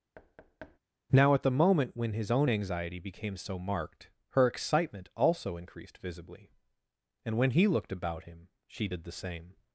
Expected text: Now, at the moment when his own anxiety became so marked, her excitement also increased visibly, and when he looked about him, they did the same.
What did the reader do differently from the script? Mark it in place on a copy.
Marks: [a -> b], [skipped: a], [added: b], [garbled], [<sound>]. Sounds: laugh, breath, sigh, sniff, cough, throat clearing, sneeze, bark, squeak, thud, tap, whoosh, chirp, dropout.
[thud] Now, at the moment when his own anxiety became so marked, her excitement also increased visibly, and when he looked about him, [they -> she] did the same.